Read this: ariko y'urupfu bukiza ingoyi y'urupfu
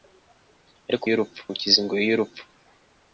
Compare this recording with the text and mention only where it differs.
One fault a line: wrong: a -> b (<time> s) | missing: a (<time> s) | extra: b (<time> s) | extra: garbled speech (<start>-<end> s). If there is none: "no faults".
no faults